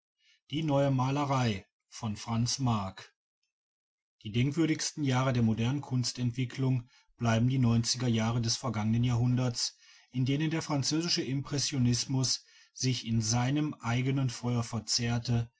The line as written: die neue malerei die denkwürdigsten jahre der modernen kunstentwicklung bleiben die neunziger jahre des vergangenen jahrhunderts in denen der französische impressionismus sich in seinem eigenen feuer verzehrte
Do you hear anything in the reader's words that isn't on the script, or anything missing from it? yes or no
no